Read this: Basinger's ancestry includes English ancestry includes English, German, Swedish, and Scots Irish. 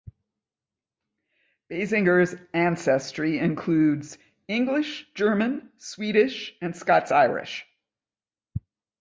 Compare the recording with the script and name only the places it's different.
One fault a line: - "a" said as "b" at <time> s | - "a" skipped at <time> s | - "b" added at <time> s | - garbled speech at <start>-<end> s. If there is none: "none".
- "ancestry includes English" skipped at 5.1 s